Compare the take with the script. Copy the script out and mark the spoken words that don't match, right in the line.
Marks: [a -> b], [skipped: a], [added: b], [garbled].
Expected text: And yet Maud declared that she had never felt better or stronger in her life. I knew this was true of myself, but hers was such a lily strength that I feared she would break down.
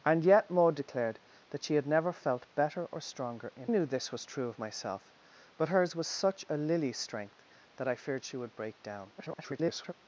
And yet Maud declared that she had never felt better or stronger in [skipped: her life. I] knew this was true of myself, but hers was such a lily strength that I feared she would break down. [garbled]